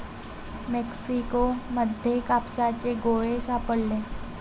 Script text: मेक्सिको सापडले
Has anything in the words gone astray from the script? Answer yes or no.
yes